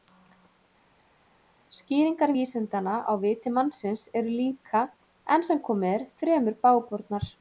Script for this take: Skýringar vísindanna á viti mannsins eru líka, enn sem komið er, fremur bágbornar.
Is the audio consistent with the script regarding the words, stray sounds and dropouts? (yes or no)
yes